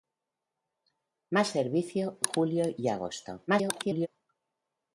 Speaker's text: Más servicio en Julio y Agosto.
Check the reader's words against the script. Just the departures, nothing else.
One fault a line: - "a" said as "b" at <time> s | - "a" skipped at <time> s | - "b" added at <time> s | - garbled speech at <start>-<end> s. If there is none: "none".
- "en" skipped at 2.2 s
- garbled speech at 3.5-4.1 s